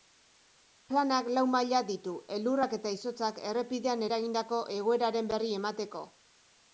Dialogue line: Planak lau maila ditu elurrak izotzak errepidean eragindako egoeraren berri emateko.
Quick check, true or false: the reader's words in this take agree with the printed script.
false